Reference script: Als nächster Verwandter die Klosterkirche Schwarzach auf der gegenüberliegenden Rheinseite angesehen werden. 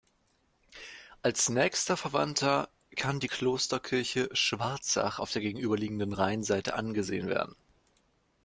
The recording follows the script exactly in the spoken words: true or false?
false